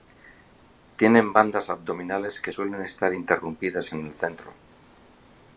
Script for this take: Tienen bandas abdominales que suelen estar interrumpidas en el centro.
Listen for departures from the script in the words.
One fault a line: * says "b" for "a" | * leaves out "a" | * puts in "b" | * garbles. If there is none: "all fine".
all fine